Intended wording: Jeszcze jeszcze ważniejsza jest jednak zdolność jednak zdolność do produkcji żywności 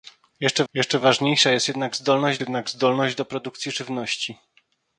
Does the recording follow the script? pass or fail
pass